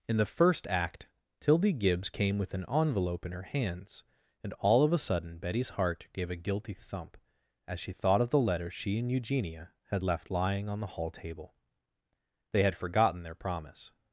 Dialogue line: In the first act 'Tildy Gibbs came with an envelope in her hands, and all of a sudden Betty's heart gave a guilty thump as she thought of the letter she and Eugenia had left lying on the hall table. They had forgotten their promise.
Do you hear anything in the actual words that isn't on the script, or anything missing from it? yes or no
no